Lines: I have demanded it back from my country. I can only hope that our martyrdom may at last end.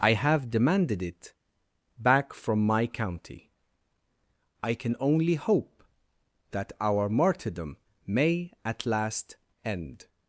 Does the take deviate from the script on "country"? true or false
true